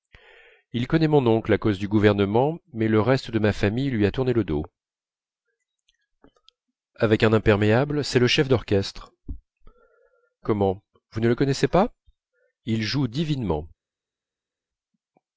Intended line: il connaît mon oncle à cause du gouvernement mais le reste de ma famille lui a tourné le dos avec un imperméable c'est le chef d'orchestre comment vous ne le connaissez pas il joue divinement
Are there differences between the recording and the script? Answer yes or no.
no